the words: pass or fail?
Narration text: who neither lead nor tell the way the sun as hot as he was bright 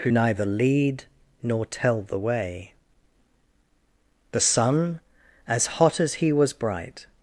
pass